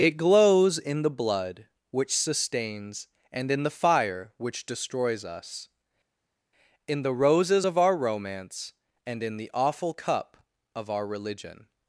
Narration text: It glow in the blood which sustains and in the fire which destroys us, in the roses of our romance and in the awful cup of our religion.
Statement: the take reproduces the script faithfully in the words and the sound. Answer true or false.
false